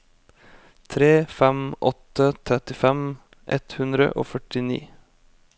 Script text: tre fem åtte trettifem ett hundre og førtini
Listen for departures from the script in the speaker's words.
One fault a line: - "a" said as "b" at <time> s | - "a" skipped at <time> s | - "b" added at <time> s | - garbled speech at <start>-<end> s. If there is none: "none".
none